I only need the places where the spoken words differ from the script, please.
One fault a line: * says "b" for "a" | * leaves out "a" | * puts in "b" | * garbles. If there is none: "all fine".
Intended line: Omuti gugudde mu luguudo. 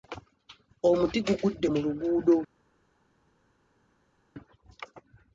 all fine